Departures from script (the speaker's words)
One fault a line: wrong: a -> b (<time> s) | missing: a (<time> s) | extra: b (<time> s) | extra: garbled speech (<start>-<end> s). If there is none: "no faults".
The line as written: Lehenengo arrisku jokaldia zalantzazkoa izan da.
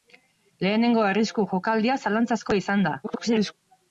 extra: garbled speech (3.0-3.5 s)